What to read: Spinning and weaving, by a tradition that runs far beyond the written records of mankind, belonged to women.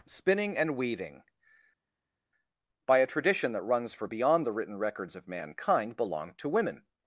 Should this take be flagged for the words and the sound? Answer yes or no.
yes